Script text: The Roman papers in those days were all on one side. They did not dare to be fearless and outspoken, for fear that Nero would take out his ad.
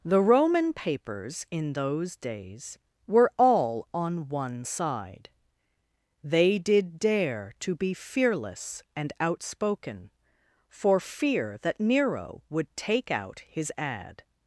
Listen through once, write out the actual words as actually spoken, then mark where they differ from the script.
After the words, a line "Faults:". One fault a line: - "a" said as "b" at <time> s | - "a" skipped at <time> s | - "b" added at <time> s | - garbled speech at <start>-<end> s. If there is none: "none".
The Roman papers in those days were all on one side. They did dare to be fearless and outspoken, for fear that Nero would take out his ad.
Faults:
- "not" skipped at 7.0 s